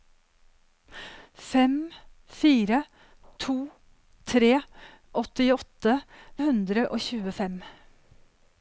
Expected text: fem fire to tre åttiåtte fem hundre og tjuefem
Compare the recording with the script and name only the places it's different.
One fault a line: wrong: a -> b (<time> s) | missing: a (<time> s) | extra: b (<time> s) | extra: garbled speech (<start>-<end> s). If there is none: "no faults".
missing: fem (5.9 s)